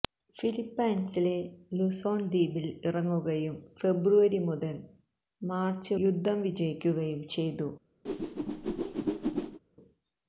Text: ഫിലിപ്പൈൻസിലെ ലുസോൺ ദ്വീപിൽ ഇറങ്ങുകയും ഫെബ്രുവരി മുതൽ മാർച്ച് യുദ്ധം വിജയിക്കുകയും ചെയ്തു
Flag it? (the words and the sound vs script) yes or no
yes